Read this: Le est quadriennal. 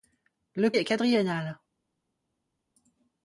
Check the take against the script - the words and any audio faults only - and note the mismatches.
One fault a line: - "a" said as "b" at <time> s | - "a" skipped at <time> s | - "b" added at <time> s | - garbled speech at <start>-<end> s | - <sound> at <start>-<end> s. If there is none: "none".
none